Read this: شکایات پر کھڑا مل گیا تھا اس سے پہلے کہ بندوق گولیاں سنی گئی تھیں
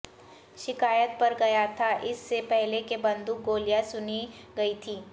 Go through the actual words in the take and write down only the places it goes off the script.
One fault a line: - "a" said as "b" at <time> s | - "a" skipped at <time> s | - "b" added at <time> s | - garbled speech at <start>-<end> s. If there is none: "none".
- "کھڑا مل" skipped at 1.3 s